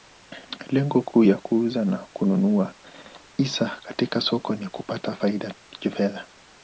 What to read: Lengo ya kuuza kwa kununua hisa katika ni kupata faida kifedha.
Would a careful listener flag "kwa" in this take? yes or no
yes